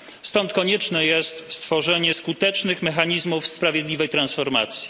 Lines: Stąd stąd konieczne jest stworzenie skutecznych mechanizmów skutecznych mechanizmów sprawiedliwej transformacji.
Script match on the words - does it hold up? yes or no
no